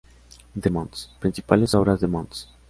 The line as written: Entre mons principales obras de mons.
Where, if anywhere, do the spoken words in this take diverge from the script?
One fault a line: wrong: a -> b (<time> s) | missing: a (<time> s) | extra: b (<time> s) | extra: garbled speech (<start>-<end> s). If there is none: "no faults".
no faults